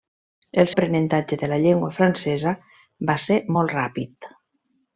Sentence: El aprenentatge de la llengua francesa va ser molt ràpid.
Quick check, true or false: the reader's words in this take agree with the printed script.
true